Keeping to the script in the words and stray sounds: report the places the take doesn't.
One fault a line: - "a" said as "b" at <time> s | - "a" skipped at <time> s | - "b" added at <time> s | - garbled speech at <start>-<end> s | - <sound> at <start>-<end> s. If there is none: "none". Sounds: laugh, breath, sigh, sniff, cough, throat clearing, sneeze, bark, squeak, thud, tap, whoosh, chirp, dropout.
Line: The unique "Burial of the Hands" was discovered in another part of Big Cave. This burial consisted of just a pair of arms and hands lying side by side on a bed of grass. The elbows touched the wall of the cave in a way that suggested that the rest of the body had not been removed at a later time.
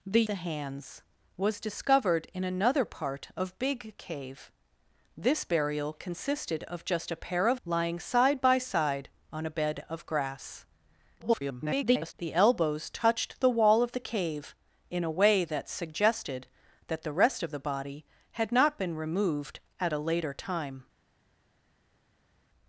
- "unique Burial of" skipped at 0.2 s
- "arms and hands" skipped at 7.6 s
- garbled speech at 11.2-12.1 s